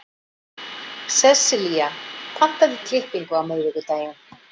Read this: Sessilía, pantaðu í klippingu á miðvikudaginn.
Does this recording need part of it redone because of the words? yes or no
no